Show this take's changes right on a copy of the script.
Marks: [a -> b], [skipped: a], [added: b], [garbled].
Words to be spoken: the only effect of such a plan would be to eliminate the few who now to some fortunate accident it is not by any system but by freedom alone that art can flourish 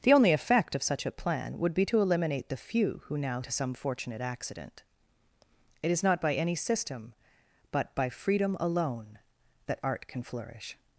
the only effect of such a plan would be to eliminate the few who now to some fortunate accident it is not by any system but by freedom alone that art can flourish